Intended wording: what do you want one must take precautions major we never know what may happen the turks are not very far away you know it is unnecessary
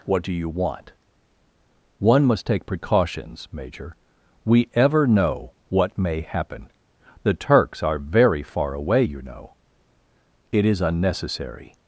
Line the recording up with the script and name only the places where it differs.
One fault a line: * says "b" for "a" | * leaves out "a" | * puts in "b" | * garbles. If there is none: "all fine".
* says "ever" for "never"
* leaves out "not"